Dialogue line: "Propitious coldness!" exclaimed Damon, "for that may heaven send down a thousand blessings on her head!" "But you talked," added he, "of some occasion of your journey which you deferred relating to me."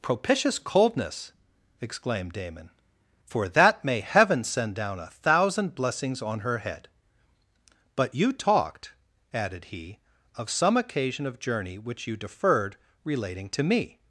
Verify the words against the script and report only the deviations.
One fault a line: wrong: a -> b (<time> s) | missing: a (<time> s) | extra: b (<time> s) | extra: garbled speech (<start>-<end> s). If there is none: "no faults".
missing: your (11.4 s)